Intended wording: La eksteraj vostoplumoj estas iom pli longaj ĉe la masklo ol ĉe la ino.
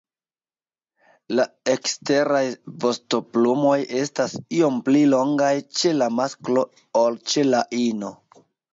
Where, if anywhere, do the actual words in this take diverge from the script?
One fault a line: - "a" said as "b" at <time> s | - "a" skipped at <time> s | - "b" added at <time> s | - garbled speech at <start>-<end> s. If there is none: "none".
none